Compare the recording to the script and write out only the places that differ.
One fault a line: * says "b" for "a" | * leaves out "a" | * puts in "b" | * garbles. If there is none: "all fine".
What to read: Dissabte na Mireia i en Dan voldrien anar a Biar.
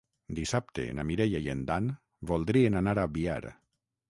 all fine